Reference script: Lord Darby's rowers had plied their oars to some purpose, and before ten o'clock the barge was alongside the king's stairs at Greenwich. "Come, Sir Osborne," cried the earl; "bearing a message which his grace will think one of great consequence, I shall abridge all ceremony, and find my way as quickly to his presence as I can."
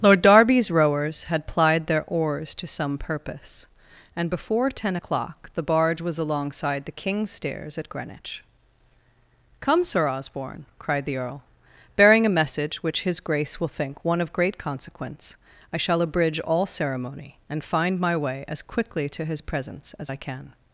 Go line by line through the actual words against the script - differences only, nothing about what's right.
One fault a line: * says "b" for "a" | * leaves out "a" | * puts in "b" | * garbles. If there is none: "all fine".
all fine